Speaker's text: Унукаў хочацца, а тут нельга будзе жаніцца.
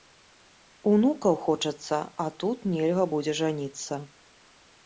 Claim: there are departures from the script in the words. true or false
false